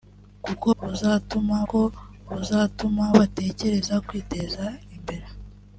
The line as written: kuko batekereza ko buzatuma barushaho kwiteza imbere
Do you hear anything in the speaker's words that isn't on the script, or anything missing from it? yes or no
yes